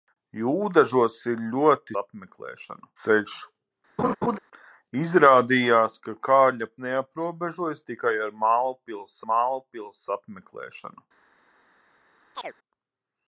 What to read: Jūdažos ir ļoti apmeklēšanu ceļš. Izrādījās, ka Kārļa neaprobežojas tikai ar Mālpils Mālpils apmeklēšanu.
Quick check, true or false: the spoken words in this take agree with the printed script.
true